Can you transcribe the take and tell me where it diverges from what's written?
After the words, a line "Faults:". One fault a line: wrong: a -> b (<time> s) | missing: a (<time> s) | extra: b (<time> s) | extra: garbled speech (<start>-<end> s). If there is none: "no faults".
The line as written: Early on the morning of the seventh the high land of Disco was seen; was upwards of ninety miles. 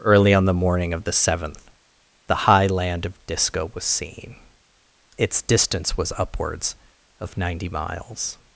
Early on the morning of the seventh the high land of Disco was seen; its distance was upwards of ninety miles.
Faults:
extra: its distance (5.2 s)